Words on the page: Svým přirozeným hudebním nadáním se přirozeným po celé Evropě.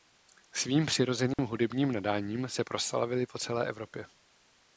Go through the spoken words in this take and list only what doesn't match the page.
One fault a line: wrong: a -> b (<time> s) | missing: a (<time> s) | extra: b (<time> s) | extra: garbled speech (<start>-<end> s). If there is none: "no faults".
wrong: přirozeným -> proslavili (2.6 s)